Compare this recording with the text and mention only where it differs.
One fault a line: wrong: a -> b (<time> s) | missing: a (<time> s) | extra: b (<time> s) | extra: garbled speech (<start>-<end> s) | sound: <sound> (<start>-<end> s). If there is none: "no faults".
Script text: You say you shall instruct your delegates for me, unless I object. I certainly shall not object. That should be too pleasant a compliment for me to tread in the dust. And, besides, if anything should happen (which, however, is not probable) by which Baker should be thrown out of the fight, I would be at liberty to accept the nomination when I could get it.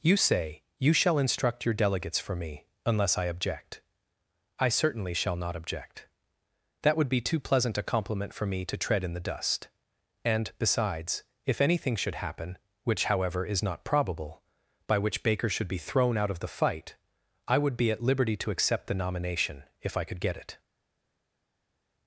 wrong: should -> would (7.0 s)
wrong: when -> if (19.8 s)